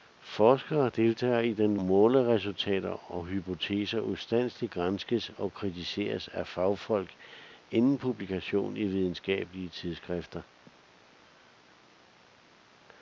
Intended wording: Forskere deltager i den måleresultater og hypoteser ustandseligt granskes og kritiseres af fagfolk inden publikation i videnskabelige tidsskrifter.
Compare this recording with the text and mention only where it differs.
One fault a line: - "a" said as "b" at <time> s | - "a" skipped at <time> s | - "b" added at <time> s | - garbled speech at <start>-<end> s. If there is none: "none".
none